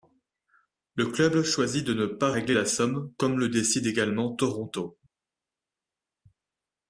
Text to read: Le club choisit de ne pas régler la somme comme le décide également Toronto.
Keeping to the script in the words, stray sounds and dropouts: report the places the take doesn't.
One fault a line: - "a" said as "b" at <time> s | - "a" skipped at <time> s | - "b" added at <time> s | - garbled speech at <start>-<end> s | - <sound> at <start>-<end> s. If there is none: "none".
none